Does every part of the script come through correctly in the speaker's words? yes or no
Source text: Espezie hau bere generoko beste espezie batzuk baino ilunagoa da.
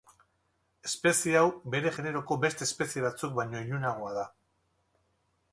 yes